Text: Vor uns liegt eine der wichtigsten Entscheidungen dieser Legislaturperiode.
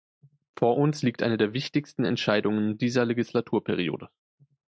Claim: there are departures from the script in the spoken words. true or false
false